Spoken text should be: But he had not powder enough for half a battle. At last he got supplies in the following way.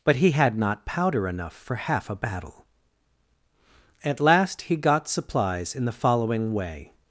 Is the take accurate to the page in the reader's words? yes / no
yes